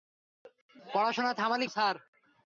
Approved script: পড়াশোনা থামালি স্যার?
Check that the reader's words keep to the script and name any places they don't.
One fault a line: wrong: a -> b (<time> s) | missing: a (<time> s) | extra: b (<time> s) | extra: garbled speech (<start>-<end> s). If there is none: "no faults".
no faults